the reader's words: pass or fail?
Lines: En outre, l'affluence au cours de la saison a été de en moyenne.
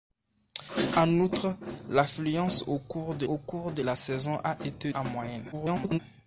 fail